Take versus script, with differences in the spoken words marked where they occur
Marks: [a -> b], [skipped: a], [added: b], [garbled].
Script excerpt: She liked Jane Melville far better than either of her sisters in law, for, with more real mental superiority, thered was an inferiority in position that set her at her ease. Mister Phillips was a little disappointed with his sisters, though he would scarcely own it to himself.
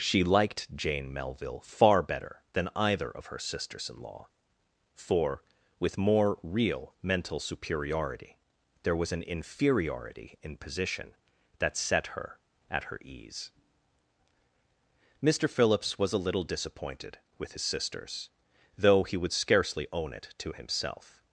She liked Jane Melville far better than either of her sisters in law, for, with more real mental superiority, [thered -> there] was an inferiority in position that set her at her ease. Mister Phillips was a little disappointed with his sisters, though he would scarcely own it to himself.